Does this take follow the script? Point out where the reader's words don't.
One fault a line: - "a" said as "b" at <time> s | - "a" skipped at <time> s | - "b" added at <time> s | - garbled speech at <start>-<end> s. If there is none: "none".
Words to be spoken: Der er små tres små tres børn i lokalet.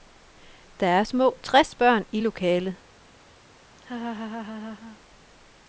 - "små tres" skipped at 1.7 s